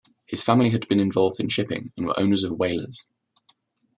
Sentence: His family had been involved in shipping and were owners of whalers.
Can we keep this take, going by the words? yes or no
yes